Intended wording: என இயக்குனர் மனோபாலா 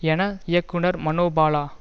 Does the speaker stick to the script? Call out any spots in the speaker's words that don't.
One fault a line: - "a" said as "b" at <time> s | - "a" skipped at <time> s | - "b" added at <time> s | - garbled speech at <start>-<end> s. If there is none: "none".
none